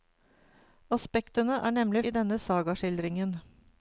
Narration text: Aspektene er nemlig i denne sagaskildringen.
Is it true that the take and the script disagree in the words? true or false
false